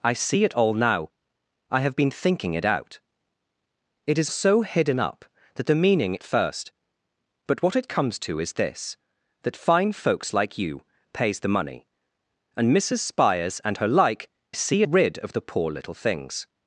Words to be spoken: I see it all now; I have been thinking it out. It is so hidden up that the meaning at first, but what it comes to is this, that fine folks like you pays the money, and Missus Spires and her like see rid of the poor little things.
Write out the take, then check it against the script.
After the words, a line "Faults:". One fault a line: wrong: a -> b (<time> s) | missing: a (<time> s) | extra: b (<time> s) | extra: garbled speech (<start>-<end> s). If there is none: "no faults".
I see it all now; I have been thinking it out. It is so hidden up that the meaning at first, but what it comes to is this, that fine folks like you pays the money, and Missus Spires and her like see rid of the poor little things.
Faults:
no faults